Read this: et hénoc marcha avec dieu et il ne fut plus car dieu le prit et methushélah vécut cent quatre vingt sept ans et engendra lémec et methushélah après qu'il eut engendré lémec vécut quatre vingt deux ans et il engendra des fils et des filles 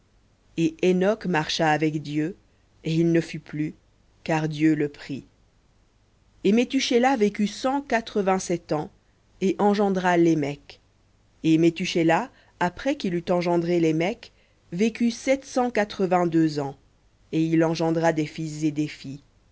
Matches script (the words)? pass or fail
fail